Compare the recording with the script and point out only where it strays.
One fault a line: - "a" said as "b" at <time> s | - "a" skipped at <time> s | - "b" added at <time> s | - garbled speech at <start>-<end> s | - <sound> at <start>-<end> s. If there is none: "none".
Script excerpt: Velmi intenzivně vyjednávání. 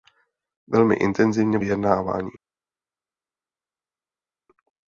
none